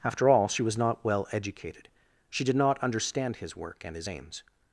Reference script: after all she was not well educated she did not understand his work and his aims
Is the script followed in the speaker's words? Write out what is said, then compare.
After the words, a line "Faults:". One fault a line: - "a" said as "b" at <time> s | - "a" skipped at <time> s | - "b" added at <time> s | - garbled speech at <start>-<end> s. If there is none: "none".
after all she was not well educated she did not understand his work and his aims
Faults:
none